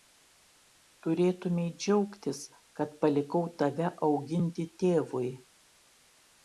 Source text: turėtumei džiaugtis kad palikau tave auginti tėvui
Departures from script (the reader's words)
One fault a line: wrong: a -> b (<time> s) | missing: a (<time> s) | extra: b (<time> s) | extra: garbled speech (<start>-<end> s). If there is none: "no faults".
no faults